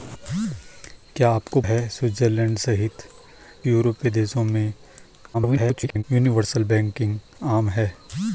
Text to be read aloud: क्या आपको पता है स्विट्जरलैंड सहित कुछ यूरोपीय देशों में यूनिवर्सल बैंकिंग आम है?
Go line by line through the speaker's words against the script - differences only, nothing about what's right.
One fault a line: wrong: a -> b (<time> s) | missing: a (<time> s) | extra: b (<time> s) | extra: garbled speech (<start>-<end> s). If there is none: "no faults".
missing: पता (1.6 s)
missing: कुछ (3.0 s)
extra: garbled speech (5.3-6.0 s)